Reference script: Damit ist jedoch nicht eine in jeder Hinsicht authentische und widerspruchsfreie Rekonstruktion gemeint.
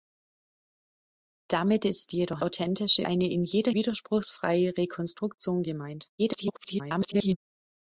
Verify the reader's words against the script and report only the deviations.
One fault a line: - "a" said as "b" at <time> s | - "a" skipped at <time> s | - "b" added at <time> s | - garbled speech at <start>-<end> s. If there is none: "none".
- "nicht" said as "authentische" at 2.4 s
- "Hinsicht authentische und" skipped at 3.7 s
- garbled speech at 6.2-7.4 s